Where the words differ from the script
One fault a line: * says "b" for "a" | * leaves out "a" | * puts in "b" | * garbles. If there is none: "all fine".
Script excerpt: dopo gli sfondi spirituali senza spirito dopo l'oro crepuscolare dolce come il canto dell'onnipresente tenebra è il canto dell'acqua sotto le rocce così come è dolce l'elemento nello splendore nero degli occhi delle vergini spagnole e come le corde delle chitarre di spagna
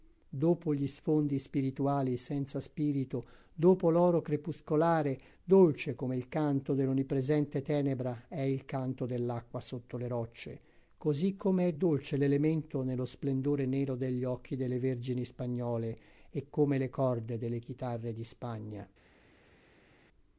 all fine